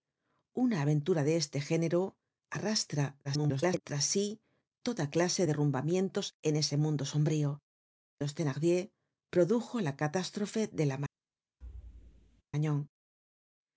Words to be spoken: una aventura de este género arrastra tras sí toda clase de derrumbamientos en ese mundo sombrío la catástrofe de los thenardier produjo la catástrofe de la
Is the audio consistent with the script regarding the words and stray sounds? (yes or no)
no